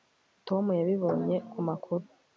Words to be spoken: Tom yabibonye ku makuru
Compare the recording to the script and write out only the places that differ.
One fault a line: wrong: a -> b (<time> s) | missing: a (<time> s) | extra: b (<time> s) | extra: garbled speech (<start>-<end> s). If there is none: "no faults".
no faults